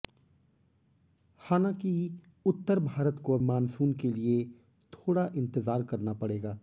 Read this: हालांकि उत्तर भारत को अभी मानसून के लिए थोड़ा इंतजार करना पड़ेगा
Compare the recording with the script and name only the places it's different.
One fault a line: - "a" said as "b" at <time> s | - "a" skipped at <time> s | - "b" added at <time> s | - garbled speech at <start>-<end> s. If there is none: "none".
- "अभी" skipped at 3.4 s